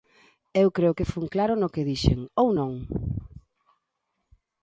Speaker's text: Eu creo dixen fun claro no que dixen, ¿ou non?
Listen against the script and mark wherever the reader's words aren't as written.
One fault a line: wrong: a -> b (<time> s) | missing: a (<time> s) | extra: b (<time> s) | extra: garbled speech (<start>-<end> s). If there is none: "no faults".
wrong: dixen -> que (1.0 s)